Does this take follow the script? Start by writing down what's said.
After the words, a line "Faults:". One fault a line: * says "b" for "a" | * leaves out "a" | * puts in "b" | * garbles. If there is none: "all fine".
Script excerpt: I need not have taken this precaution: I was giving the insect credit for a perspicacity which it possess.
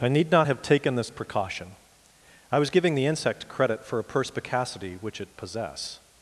I need not have taken this precaution: I was giving the insect credit for a perspicacity which it possess.
Faults:
all fine